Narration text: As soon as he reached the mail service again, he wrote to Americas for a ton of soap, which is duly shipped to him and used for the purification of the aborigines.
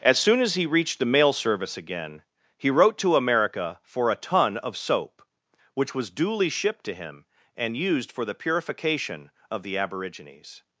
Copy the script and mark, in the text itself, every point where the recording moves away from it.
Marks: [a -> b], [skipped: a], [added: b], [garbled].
As soon as he reached the mail service again, he wrote to [Americas -> America] for a ton of soap, which [is -> was] duly shipped to him and used for the purification of the aborigines.